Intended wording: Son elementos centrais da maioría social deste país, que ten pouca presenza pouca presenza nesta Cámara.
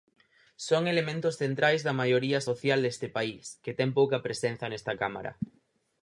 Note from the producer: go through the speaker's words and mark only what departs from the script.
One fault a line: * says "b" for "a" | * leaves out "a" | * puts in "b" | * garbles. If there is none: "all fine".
* leaves out "pouca presenza"